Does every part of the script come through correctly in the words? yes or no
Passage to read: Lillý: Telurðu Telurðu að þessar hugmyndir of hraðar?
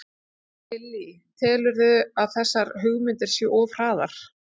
no